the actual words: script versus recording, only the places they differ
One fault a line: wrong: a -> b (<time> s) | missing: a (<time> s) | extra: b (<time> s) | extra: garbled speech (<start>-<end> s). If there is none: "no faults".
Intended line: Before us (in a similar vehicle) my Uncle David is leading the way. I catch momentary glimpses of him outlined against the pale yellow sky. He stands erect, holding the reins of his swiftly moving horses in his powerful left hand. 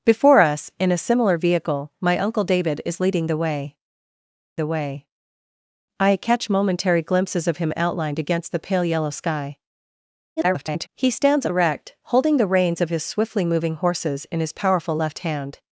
extra: the way (4.6 s)
extra: garbled speech (10.4-10.9 s)